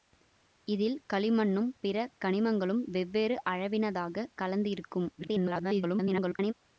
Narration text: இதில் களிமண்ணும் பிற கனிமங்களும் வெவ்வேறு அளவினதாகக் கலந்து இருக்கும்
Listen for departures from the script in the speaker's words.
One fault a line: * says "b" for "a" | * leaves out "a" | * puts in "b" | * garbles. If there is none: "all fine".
* garbles